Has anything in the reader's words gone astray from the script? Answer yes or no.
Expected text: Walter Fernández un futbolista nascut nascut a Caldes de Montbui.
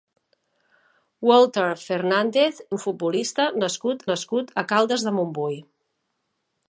no